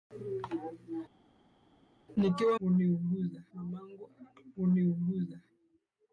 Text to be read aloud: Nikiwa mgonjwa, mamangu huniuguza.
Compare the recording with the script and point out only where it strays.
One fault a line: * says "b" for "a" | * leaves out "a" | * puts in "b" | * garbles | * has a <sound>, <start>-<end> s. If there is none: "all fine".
* says "huniuguza" for "mgonjwa"